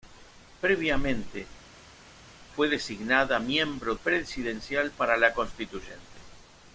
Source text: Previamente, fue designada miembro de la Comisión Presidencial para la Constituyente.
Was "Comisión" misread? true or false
true